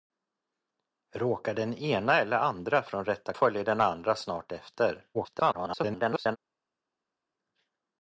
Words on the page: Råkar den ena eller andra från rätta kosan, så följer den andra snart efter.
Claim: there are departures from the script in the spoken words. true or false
true